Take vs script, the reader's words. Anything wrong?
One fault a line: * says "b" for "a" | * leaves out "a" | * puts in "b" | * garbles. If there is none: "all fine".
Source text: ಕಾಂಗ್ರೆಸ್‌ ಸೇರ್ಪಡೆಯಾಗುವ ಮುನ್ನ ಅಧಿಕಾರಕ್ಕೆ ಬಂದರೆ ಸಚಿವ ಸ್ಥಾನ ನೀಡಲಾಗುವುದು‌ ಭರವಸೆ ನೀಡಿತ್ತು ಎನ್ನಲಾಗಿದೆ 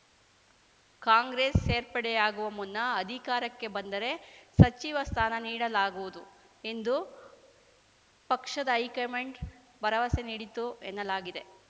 * puts in "ಎಂದು ಪಕ್ಷದ ಹೈಕಮಾಂಡ್"